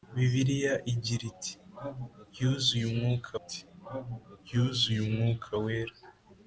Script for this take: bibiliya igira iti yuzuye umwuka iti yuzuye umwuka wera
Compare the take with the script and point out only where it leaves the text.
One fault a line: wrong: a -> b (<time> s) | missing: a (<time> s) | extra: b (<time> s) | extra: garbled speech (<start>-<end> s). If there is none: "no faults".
no faults